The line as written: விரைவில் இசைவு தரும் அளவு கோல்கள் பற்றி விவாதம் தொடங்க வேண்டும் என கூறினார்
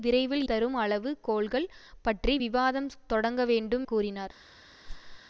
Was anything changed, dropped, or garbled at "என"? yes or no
yes